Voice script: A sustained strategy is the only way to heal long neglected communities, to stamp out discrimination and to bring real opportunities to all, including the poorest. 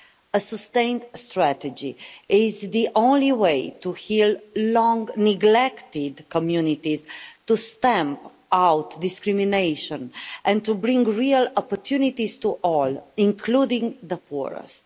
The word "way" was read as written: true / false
true